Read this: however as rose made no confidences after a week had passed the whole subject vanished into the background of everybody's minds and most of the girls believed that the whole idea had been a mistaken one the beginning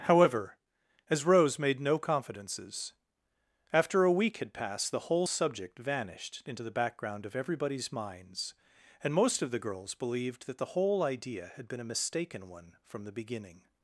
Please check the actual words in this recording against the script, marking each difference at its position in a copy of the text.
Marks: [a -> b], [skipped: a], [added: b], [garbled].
however as rose made no confidences after a week had passed the whole subject vanished into the background of everybody's minds and most of the girls believed that the whole idea had been a mistaken one [added: from] the beginning